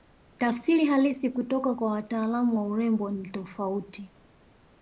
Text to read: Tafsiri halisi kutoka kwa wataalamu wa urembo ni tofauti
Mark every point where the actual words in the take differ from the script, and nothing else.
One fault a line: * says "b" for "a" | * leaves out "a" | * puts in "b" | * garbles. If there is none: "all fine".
all fine